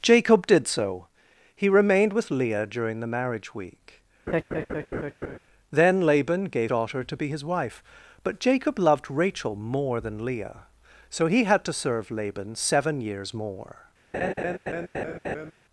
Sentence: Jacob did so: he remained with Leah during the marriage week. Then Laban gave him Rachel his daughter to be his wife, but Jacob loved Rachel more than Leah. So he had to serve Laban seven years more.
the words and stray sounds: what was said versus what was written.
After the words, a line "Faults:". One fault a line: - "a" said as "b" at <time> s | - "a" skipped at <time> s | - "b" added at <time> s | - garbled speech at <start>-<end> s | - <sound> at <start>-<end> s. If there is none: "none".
Jacob did so: he remained with Leah during the marriage week. Then Laban gave daughter to be his wife, but Jacob loved Rachel more than Leah. So he had to serve Laban seven years more.
Faults:
- laugh at 4.3-5.4 s
- "him Rachel his" skipped at 6.7 s
- laugh at 14.1-15.5 s